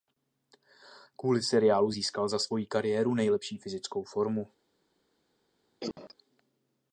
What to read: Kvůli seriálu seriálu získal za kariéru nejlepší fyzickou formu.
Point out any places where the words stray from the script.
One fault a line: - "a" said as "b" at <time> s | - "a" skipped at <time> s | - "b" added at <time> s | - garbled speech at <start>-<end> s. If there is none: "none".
- "seriálu" skipped at 1.9 s
- "svoji" added at 2.4 s